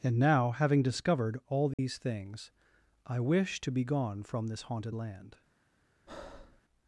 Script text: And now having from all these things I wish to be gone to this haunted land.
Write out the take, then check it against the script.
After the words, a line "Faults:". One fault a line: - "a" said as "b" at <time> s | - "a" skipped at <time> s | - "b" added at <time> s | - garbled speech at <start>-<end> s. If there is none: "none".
And now having discovered all these things I wish to be gone from this haunted land.
Faults:
- "from" said as "discovered" at 0.8 s
- "to" said as "from" at 4.2 s